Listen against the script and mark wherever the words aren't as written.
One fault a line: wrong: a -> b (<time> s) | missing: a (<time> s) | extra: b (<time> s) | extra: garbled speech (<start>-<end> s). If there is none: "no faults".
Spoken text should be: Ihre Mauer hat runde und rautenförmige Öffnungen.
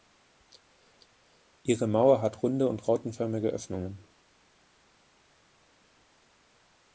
no faults